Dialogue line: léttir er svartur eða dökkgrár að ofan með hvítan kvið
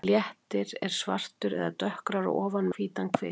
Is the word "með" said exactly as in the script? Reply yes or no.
no